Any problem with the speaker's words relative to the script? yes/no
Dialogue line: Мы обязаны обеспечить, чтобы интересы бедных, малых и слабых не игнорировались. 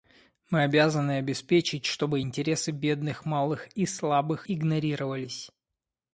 yes